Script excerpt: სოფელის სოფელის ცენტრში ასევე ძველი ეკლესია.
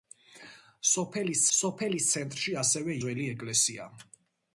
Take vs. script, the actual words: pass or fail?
pass